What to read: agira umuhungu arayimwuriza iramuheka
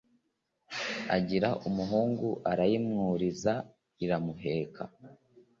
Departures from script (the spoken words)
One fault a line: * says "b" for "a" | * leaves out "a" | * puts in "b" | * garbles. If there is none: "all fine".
all fine